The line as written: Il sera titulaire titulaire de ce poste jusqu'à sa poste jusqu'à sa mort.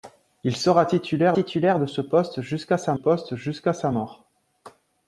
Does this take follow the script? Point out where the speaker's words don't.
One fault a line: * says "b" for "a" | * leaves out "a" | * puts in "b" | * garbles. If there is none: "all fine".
all fine